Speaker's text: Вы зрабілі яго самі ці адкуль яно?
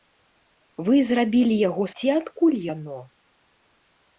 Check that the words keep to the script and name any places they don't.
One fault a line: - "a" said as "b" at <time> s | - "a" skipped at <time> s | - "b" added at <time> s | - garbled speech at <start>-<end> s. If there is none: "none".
- "самі" skipped at 1.9 s